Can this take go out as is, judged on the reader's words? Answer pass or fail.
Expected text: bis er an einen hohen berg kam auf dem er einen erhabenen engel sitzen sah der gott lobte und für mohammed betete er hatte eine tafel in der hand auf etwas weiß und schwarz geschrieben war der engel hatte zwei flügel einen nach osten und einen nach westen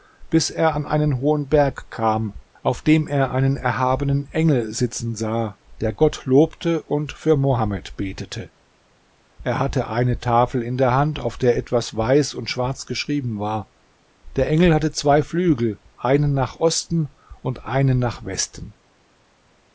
fail